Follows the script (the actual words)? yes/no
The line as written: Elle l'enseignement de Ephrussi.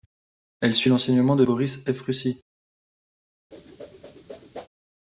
no